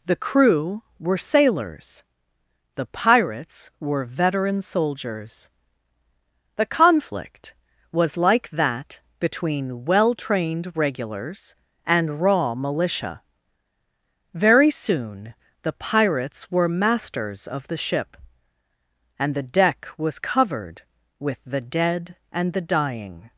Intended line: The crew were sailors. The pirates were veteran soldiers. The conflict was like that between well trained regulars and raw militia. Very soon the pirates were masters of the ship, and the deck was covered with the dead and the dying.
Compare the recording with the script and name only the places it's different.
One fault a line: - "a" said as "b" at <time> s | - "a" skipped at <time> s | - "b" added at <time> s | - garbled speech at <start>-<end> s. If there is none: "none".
none